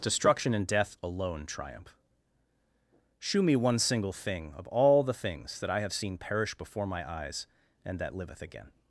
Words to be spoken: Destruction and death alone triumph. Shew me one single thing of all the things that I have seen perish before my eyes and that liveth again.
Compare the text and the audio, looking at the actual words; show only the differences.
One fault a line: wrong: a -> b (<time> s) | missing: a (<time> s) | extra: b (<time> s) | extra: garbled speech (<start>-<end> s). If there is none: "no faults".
no faults